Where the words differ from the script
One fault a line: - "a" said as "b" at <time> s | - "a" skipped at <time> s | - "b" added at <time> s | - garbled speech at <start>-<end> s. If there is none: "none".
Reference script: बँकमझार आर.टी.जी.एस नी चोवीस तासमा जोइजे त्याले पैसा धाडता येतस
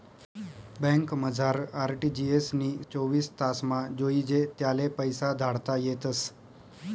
none